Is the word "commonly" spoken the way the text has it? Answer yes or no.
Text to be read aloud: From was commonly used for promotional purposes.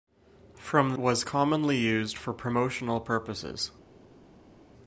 yes